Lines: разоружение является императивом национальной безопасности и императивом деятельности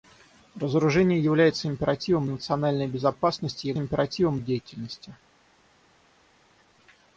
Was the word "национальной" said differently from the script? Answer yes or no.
no